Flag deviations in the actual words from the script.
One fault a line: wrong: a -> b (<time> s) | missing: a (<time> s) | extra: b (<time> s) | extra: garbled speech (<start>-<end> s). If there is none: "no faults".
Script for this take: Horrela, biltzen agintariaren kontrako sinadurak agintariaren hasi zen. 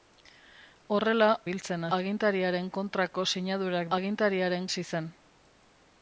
no faults